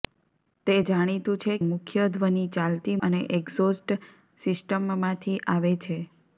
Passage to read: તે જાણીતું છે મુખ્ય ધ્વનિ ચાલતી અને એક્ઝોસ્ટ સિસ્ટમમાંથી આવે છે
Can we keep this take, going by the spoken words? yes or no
yes